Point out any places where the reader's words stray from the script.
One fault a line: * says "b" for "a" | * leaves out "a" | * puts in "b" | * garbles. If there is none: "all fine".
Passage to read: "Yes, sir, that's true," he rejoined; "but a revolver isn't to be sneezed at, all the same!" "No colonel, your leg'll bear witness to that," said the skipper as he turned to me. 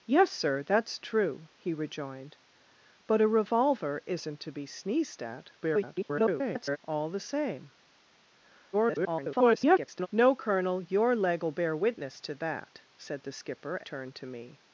* garbles
* garbles
* leaves out "as he"